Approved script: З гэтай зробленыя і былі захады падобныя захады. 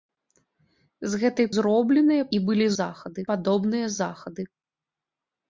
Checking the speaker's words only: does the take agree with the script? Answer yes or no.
yes